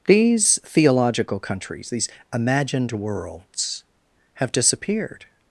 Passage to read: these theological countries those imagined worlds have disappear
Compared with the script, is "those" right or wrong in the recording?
wrong